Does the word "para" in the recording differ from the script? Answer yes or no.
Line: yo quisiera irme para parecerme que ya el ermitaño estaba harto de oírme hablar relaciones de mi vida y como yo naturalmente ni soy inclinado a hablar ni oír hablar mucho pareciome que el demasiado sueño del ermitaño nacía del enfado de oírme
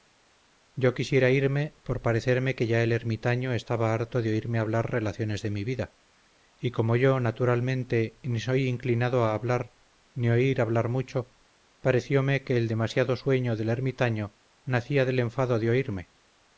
yes